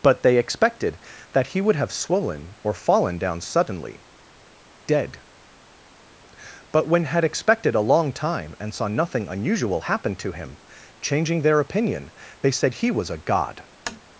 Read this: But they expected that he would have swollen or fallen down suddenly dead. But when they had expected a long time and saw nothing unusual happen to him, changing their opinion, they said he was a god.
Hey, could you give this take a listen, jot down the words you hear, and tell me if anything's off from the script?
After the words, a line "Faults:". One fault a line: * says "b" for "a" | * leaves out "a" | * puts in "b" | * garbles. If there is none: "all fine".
But they expected that he would have swollen or fallen down suddenly dead. But when had expected a long time and saw nothing unusual happen to him, changing their opinion, they said he was a god.
Faults:
* leaves out "they"